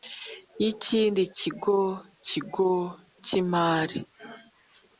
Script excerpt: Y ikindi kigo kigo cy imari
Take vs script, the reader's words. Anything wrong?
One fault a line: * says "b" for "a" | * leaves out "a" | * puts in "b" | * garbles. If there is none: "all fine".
all fine